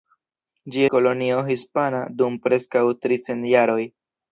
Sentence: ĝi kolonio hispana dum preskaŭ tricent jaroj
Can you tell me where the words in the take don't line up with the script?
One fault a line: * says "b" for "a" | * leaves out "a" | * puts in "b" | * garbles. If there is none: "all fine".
all fine